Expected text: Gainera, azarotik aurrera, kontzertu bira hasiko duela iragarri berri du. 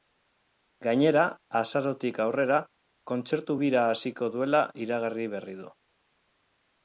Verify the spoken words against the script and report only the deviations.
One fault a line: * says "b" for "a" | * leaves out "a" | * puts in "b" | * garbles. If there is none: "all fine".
all fine